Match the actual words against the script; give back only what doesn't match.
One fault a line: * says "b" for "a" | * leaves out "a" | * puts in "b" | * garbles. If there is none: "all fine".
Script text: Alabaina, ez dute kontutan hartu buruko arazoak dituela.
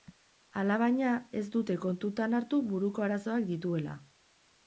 all fine